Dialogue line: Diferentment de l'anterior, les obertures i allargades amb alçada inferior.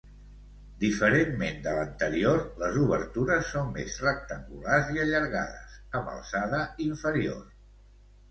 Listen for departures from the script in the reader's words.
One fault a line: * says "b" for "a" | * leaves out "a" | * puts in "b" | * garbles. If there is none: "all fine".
* puts in "són més rectangulars"